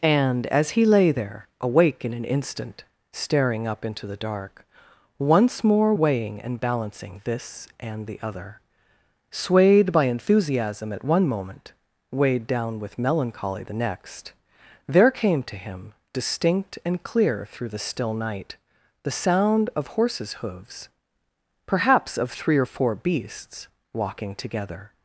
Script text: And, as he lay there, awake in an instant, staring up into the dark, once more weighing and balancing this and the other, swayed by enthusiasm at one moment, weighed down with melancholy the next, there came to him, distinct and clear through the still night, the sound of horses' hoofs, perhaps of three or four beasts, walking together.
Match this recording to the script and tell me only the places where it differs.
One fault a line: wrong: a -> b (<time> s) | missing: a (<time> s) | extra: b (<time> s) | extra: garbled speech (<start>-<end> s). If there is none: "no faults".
no faults